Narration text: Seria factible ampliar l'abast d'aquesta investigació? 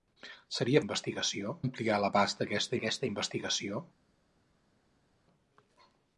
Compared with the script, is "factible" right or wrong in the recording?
wrong